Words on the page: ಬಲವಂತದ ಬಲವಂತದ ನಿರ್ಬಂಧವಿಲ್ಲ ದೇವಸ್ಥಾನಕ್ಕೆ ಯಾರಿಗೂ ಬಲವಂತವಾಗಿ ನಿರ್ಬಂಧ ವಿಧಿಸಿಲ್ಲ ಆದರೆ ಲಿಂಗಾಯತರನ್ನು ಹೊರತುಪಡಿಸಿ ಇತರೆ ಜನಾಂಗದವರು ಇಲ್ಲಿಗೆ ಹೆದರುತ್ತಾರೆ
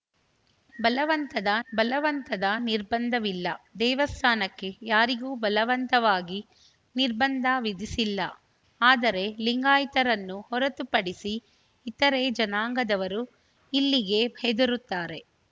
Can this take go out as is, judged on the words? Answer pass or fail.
pass